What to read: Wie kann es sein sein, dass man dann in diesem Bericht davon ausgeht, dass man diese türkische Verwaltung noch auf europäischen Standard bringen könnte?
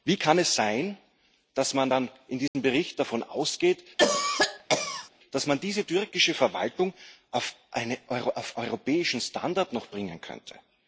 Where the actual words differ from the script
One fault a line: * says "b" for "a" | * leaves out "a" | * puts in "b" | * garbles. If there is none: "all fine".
* leaves out "sein"